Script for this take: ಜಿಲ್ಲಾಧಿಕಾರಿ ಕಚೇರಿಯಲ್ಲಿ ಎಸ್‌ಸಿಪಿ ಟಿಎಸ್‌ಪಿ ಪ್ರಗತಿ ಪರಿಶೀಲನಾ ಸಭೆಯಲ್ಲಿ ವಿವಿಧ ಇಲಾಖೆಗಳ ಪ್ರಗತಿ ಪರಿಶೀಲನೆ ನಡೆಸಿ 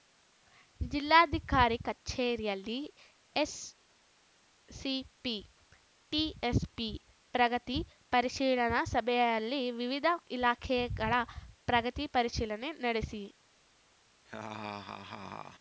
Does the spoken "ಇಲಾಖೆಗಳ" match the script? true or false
true